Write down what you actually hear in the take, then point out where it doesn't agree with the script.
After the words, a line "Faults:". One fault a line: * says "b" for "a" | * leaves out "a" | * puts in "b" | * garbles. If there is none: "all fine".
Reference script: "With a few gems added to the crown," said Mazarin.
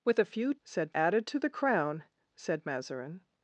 "With a few said added to the crown," said Mazarin.
Faults:
* says "said" for "gems"